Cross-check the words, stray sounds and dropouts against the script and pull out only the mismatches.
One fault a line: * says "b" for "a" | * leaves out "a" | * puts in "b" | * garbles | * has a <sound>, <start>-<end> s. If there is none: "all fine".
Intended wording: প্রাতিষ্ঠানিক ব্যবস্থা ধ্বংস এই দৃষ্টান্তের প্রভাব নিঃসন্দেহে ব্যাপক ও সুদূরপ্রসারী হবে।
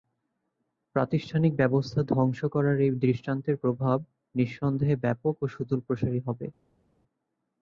* puts in "করার"